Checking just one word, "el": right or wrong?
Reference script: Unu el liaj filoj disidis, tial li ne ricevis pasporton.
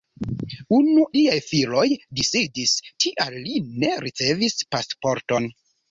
wrong